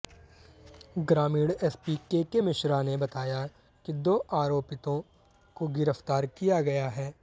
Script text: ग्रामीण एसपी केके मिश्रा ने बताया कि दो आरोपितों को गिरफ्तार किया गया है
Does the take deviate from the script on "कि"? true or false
false